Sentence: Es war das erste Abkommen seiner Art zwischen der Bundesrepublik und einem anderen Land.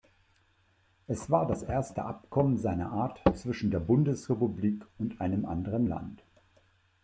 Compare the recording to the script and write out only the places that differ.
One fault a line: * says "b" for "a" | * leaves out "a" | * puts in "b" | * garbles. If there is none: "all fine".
all fine